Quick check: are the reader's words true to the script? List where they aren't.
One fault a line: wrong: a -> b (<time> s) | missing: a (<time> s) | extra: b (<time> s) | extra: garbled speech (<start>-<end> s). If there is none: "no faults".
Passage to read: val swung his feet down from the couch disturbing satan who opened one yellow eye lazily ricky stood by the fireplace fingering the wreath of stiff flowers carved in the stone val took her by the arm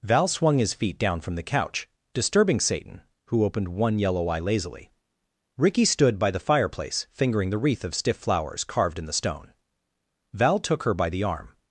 no faults